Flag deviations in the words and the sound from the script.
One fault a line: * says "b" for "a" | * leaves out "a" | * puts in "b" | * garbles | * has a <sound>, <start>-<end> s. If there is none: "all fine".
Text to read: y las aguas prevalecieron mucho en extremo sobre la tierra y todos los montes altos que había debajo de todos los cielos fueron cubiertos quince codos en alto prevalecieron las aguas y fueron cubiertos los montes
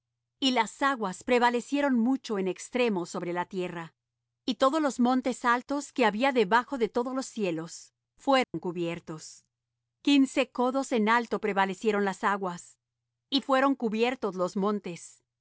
* has a dropout, 8.4-8.5 s